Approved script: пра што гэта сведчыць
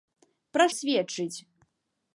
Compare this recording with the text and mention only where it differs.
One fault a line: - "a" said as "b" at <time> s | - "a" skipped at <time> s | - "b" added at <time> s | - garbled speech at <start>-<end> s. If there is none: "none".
- "што гэта" skipped at 0.7 s